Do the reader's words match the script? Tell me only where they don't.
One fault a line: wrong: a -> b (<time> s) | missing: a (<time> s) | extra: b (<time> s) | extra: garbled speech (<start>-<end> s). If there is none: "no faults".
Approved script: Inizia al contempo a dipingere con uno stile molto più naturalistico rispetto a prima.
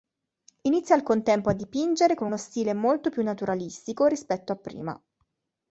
no faults